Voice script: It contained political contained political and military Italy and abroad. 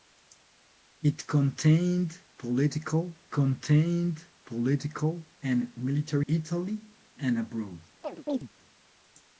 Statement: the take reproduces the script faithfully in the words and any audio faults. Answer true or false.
false